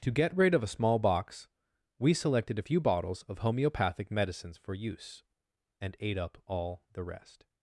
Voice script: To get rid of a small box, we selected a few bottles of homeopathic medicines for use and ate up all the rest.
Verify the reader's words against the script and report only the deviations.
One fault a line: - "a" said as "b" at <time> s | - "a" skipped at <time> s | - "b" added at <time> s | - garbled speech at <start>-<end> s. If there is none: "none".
none